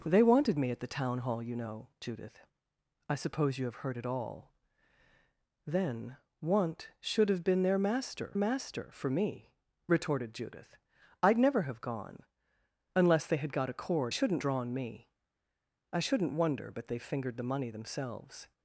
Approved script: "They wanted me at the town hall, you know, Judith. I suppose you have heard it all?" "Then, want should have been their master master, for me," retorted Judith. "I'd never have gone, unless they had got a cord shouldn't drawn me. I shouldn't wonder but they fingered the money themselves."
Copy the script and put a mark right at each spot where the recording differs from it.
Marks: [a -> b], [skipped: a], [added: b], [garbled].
"They wanted me at the town hall, you know, Judith. I suppose you have heard it all?" "Then, want should have been their master master, for me," retorted Judith. "I'd never have gone, unless they had got a cord shouldn't drawn me. I shouldn't wonder but they fingered the money themselves."